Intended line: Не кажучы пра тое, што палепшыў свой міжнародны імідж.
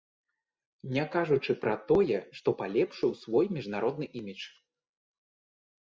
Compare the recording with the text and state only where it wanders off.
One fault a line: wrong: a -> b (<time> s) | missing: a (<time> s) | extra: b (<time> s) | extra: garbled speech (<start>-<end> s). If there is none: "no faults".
no faults